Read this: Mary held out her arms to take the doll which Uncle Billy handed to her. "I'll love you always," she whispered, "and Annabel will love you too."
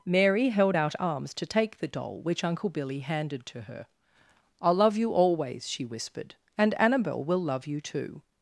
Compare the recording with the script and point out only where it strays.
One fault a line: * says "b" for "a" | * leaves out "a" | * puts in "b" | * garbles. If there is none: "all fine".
* leaves out "her"